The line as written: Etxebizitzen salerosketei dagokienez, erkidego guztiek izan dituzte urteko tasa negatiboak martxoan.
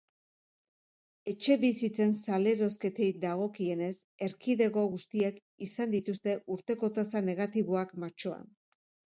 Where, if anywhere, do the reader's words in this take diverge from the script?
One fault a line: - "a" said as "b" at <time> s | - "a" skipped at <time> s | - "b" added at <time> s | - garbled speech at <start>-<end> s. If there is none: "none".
none